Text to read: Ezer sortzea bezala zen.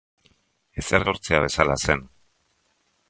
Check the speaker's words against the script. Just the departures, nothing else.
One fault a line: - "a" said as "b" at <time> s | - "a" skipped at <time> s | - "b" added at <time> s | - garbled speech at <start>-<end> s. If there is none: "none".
none